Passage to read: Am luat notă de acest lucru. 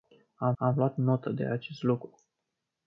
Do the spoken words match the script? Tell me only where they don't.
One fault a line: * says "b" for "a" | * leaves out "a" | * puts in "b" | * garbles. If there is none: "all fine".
* puts in "am"